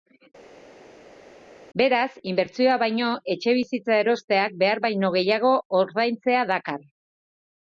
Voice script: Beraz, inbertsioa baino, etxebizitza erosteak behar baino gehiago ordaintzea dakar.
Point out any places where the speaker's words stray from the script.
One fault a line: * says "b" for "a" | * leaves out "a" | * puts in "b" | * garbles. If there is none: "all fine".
all fine